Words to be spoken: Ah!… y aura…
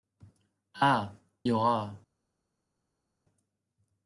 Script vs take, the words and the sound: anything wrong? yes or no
no